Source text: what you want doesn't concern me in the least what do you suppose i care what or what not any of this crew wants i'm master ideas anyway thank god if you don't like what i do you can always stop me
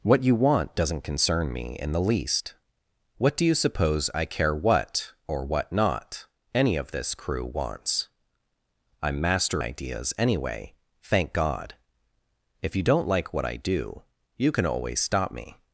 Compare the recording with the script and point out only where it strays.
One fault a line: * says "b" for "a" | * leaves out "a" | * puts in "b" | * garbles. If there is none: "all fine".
all fine